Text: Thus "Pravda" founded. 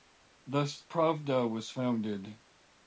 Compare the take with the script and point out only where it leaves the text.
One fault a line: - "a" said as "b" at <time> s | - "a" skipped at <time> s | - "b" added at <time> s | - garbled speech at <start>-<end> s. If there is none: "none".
- "was" added at 1.5 s